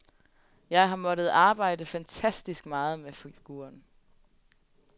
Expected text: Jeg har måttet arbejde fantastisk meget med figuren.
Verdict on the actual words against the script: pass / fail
pass